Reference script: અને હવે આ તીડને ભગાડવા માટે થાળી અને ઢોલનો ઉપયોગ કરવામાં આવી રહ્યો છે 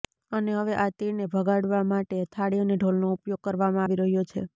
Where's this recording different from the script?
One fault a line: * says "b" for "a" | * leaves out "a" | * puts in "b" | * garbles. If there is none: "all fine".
all fine